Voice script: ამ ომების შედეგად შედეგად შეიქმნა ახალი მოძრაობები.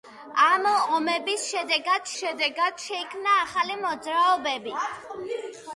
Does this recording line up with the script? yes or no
yes